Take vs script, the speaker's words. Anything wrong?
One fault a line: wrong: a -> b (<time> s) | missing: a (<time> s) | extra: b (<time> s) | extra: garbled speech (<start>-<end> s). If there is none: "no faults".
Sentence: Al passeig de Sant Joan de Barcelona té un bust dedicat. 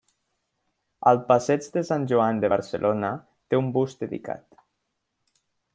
no faults